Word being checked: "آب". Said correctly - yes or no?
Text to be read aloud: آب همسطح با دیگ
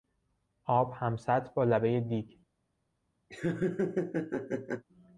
yes